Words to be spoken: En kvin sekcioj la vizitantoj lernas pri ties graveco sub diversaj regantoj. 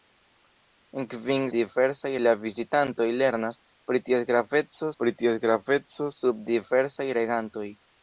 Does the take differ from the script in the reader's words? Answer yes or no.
yes